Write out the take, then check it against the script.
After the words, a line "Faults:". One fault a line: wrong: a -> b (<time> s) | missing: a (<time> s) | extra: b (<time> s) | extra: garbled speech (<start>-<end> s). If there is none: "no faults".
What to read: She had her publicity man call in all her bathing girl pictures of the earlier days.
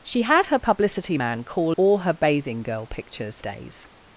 She had her publicity man call all her bathing girl pictures days.
Faults:
missing: in (1.7 s)
missing: of the earlier (3.4 s)